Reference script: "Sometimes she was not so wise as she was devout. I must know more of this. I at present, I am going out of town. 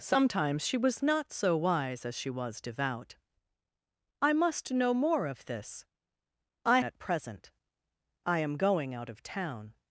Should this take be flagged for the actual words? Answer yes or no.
no